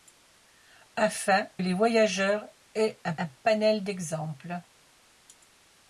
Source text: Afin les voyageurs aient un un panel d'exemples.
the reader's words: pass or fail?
pass